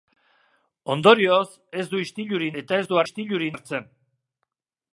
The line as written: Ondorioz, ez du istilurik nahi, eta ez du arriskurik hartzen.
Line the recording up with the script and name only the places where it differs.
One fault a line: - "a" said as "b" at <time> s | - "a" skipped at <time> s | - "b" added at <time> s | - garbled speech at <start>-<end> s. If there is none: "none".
- "nahi" skipped at 2.6 s
- "arriskurik" said as "istilurik" at 3.0 s